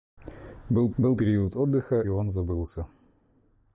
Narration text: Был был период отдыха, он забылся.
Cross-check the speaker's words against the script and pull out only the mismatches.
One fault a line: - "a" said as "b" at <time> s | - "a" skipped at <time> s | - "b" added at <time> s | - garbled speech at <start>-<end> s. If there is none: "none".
none